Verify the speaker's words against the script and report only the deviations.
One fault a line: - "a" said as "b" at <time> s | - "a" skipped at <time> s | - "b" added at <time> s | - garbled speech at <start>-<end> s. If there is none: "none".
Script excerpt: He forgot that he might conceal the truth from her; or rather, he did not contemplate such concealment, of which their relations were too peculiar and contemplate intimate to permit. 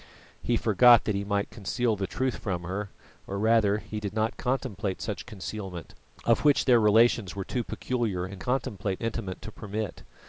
none